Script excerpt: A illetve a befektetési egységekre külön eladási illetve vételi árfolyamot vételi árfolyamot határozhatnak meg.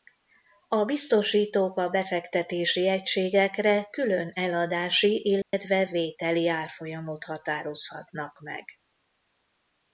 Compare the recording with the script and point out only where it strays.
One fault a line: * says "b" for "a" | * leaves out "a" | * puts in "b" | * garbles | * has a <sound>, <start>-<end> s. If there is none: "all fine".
* says "biztosítók" for "illetve"
* has a dropout, 5.4-5.5 s
* leaves out "vételi árfolyamot"